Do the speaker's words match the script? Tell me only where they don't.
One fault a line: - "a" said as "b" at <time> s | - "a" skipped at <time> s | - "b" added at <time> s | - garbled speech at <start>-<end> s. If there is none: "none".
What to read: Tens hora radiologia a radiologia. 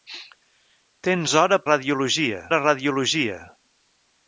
none